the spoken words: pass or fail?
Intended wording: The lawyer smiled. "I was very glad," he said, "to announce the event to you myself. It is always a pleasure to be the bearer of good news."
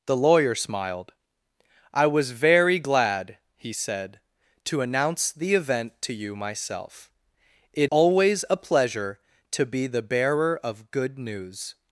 fail